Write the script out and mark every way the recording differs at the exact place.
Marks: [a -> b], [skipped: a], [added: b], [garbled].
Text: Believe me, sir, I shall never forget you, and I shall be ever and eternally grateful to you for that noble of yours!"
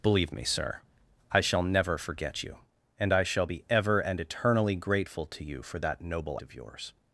Believe me, sir, I shall never forget you, and I shall be ever and eternally grateful to you for that noble of yours!"